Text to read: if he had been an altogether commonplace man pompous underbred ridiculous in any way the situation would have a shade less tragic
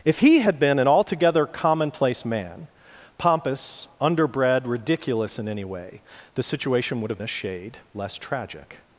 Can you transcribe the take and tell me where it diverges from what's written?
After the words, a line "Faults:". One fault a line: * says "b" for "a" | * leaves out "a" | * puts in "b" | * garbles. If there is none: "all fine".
if he had been an altogether commonplace man pompous underbred ridiculous in any way the situation would have a shade less tragic
Faults:
all fine